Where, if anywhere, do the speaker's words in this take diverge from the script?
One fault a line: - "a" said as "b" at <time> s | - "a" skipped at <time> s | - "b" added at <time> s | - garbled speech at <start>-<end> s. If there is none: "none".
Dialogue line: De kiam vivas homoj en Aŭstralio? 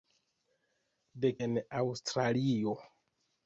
- "kiam vivas homoj" skipped at 1.3 s